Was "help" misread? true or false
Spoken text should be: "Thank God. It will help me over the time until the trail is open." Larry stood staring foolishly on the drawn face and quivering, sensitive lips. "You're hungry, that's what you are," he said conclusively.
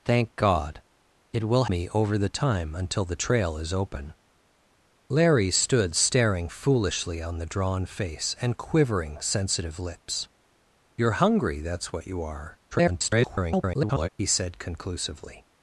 true